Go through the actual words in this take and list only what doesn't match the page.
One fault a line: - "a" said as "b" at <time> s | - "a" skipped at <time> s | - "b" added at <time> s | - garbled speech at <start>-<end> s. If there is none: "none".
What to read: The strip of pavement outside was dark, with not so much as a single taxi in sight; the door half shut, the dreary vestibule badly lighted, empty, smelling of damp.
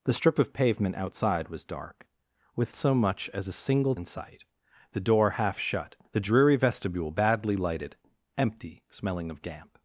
- "not" skipped at 2.7 s
- "taxi" skipped at 3.9 s